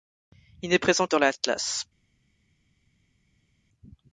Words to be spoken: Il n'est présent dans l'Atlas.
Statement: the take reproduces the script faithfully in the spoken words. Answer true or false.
true